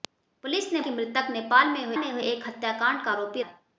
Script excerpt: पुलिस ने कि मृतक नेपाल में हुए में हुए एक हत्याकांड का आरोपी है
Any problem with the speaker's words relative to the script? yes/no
no